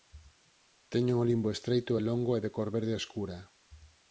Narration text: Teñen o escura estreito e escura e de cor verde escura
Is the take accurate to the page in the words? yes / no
no